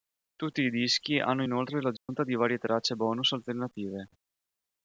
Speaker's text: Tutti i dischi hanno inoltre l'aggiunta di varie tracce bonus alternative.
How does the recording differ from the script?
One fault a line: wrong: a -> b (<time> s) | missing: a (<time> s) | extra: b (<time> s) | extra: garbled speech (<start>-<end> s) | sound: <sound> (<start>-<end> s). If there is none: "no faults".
sound: dropout (2.0-2.1 s)